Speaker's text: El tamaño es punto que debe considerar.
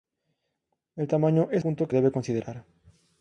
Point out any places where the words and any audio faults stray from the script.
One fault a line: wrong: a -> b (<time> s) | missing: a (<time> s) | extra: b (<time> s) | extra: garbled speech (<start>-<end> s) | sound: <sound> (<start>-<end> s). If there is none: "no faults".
no faults